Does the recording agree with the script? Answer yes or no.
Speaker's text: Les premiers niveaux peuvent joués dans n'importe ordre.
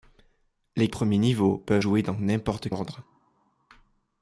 yes